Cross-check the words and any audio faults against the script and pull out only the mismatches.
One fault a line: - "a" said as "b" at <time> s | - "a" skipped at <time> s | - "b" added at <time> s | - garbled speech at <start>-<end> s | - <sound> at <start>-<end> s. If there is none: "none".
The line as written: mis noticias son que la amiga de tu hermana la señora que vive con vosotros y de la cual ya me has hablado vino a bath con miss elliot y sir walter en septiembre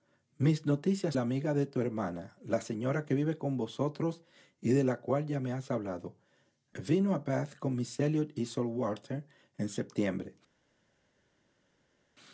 - "son que" skipped at 1.1 s